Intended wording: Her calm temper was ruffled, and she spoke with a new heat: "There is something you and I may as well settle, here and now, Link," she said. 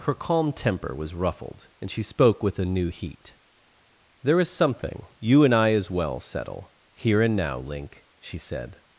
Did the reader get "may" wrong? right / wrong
wrong